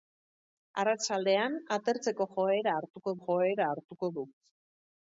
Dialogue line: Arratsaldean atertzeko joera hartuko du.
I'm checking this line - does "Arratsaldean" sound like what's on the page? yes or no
yes